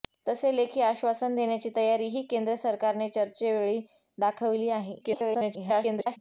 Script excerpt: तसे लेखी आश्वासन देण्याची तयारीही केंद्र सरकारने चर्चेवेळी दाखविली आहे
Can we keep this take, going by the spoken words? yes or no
no